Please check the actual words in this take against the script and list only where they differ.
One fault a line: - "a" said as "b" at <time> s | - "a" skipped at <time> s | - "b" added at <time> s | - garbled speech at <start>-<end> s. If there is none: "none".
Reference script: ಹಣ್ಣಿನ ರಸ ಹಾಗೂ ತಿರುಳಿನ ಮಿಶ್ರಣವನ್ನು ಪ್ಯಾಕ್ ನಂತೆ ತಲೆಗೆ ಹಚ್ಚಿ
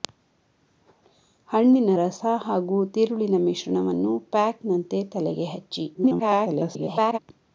- garbled speech at 5.9-7.2 s